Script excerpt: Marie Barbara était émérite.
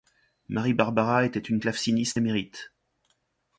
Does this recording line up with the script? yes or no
no